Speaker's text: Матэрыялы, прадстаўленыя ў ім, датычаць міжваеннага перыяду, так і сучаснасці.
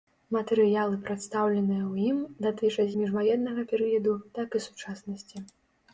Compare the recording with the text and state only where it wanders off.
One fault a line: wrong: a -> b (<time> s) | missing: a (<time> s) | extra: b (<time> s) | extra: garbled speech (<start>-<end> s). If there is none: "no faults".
no faults